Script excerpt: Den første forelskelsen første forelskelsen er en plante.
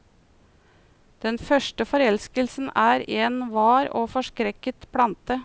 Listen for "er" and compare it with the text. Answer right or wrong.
wrong